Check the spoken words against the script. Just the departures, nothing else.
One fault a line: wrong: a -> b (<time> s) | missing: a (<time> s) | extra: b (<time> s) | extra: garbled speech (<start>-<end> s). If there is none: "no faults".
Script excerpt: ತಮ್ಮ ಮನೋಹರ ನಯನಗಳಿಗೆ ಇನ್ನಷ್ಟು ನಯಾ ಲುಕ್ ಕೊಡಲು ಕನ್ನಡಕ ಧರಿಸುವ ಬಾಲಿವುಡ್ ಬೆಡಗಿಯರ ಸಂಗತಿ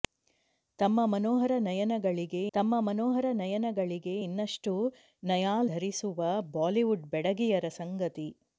wrong: ಇನ್ನಷ್ಟು ನಯಾ ಲುಕ್ ಕೊಡಲು ಕನ್ನಡಕ -> ತಮ್ಮ ಮನೋಹರ ನಯನಗಳಿಗೆ ಇನ್ನಷ್ಟು ನಯಾ (2.5 s)